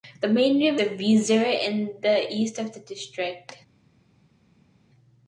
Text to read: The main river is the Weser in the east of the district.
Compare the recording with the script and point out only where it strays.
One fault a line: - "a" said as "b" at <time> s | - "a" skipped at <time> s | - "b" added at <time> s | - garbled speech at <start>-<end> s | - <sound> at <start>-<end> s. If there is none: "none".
- "is" skipped at 0.8 s